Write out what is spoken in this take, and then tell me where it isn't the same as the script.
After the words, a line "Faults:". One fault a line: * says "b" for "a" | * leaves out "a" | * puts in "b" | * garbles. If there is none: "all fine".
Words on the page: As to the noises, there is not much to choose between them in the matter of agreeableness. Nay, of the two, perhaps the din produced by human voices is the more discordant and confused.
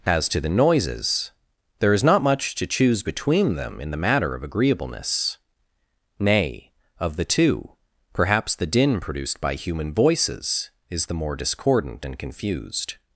As to the noises, there is not much to choose between them in the matter of agreeableness. Nay, of the two, perhaps the din produced by human voices is the more discordant and confused.
Faults:
all fine